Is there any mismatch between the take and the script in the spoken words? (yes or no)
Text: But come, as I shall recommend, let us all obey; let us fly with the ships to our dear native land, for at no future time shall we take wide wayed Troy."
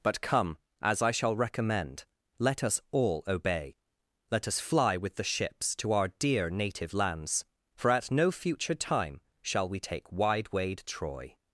yes